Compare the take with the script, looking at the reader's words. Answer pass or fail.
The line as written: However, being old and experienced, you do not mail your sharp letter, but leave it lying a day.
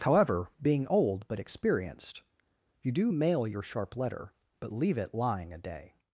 fail